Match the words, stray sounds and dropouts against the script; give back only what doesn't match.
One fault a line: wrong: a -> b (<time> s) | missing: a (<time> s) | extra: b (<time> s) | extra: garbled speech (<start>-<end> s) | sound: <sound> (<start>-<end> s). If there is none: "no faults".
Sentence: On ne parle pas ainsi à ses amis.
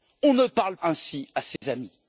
missing: pas (0.8 s)
sound: dropout (1.6-1.6 s)